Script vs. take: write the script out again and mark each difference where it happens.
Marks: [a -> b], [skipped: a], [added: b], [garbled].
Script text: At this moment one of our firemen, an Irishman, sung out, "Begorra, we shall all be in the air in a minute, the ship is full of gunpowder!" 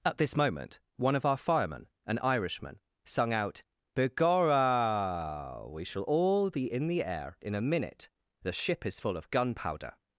At this moment one of our firemen, an Irishman, sung out, "Begorra, we shall all be in the air in a minute, the ship is full of gunpowder!"